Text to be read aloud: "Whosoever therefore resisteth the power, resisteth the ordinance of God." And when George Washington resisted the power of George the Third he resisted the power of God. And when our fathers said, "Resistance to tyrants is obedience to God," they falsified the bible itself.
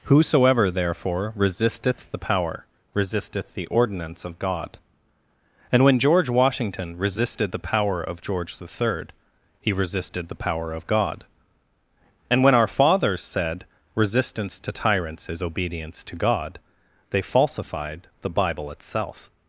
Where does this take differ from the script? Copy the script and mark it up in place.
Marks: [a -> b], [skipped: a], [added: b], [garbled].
"Whosoever therefore resisteth the power, resisteth the ordinance of God." And when George Washington resisted the power of George the Third he resisted the power of God. And when our fathers said, "Resistance to tyrants is obedience to God," they falsified the bible itself.